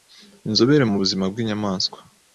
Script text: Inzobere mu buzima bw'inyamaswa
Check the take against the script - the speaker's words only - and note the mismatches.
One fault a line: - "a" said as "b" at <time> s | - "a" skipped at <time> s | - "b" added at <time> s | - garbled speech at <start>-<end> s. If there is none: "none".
none